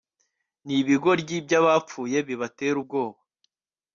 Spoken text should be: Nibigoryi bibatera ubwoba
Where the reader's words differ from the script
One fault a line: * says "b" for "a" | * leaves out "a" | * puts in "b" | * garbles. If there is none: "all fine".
* puts in "byabapfuye"